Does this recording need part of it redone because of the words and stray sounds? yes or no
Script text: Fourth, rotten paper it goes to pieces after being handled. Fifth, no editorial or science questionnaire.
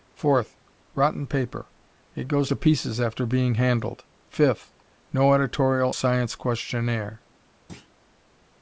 yes